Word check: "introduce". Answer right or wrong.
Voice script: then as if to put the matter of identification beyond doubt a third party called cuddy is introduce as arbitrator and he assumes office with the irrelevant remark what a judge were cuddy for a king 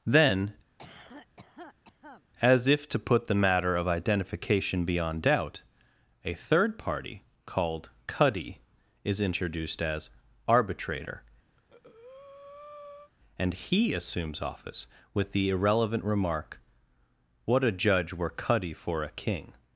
wrong